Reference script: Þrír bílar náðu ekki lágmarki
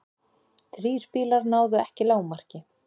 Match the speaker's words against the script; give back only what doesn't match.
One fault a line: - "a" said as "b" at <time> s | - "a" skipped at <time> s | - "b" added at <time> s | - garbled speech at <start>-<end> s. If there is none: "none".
none